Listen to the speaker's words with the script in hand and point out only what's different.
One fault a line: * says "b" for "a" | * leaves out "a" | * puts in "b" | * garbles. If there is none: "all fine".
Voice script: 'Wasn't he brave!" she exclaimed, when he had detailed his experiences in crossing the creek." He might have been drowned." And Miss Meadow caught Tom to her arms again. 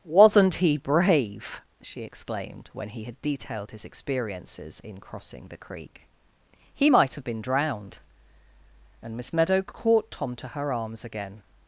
all fine